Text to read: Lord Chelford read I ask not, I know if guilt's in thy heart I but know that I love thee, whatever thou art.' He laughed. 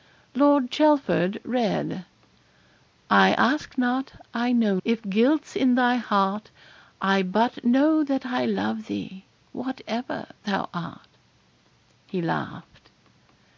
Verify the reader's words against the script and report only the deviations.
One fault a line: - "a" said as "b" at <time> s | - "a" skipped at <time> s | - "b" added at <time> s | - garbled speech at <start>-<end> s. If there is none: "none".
none